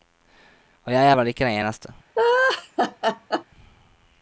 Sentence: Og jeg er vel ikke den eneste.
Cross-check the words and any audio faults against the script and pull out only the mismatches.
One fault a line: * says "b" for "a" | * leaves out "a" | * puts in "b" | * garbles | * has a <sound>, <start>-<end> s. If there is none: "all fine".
* has a laugh, 2.2-3.4 s